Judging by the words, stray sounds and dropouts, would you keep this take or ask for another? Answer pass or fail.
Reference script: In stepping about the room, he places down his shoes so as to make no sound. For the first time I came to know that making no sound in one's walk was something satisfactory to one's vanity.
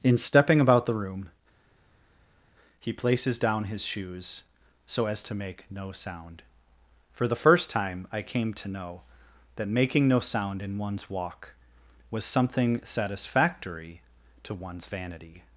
pass